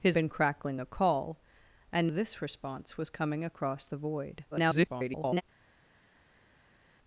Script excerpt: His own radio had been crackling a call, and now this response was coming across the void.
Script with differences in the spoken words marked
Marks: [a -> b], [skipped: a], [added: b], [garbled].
His [skipped: own radio had] been crackling a call, and [skipped: now] this response was coming across the void. [garbled]